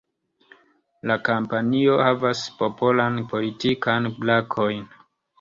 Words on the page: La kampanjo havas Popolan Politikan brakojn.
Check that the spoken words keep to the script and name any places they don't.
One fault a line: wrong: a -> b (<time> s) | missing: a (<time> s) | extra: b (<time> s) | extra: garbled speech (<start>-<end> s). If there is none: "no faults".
no faults